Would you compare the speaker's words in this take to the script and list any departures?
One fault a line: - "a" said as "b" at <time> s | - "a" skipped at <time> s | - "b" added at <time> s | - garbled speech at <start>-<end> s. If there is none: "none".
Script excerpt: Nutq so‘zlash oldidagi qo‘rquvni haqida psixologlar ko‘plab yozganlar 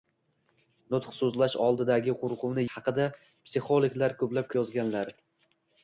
none